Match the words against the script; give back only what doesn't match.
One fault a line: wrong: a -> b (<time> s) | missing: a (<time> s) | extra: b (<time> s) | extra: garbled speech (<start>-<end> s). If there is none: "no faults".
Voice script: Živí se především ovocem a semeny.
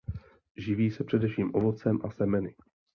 no faults